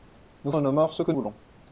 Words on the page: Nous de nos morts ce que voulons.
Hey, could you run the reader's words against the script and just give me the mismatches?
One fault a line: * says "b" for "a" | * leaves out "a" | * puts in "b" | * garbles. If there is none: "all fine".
all fine